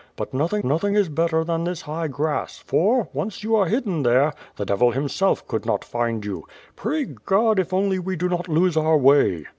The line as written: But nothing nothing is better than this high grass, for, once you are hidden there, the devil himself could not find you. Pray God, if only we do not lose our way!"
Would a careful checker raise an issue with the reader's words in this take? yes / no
no